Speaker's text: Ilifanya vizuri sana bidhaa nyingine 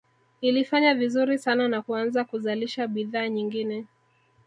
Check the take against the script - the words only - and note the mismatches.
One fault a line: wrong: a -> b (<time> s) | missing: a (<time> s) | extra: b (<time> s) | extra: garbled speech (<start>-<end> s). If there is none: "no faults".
extra: na kuanza kuzalisha (1.7 s)